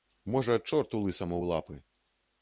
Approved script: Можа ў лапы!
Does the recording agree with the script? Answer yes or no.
no